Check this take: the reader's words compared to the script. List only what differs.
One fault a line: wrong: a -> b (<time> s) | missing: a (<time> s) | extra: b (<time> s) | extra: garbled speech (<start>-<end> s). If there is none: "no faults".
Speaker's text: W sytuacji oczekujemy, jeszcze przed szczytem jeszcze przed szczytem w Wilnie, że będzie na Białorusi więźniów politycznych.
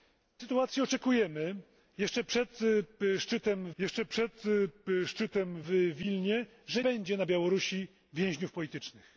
no faults